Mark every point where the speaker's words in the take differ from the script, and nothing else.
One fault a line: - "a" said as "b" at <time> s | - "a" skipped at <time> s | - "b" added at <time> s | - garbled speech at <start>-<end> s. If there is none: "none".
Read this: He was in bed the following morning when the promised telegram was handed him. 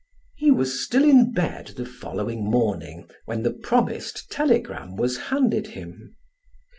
- "still" added at 0.8 s